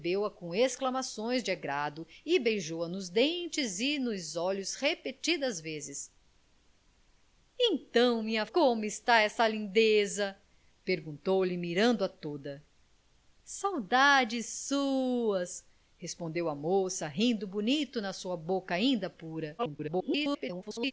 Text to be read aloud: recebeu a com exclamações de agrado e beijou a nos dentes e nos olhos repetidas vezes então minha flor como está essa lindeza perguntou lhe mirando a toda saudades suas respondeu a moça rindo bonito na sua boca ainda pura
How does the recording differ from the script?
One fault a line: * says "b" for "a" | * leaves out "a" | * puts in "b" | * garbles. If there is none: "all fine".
* leaves out "flor"
* garbles